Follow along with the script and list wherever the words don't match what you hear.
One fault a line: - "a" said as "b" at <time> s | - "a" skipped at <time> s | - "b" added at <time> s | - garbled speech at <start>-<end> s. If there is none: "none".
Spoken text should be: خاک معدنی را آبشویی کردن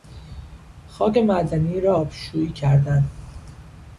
none